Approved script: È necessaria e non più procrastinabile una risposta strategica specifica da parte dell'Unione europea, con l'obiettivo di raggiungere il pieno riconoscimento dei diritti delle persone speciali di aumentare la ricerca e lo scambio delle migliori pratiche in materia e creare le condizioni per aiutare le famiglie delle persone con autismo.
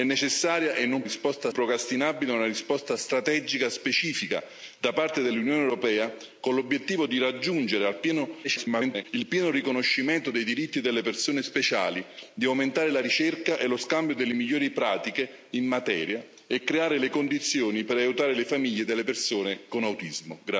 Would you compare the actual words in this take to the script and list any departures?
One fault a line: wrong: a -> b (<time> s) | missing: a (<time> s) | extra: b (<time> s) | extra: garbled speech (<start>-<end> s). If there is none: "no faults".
wrong: più -> risposta (1.0 s)
extra: garbled speech (8.4-9.1 s)